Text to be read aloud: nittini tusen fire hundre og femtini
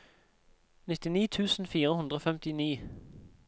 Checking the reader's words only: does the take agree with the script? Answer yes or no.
yes